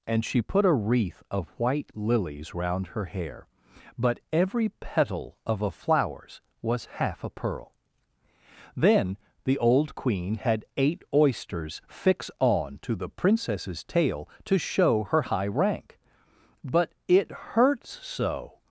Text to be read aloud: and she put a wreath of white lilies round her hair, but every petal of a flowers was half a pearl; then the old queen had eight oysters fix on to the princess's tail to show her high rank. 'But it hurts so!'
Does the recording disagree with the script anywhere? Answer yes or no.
no